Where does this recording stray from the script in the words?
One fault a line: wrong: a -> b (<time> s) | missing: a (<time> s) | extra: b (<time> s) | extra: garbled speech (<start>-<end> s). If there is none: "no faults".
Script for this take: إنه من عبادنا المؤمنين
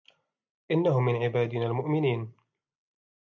no faults